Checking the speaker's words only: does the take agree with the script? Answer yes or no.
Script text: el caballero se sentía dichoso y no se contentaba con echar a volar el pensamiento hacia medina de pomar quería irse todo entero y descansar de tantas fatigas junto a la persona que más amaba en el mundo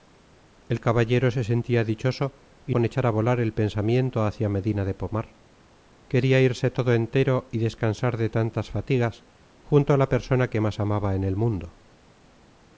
no